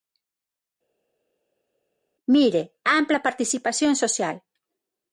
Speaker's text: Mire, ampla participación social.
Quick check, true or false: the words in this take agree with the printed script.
true